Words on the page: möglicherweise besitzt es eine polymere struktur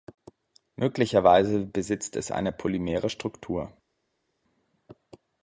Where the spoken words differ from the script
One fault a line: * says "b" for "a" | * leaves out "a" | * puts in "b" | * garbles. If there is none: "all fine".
all fine